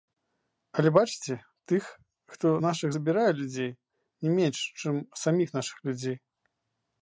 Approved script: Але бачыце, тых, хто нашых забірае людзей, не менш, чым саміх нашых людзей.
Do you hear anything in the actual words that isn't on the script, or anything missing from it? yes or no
no